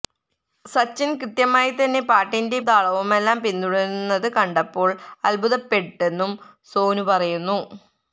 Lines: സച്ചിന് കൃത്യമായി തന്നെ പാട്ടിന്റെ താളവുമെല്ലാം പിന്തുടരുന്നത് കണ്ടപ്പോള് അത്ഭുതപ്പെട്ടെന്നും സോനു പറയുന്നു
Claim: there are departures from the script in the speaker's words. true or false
false